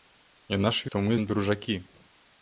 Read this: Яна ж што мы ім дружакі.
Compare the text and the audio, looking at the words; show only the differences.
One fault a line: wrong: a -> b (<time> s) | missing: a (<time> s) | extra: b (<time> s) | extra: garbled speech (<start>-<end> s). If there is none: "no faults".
no faults